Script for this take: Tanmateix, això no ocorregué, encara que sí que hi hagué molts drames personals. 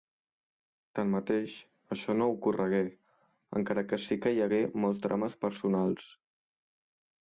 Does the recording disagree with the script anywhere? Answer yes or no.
no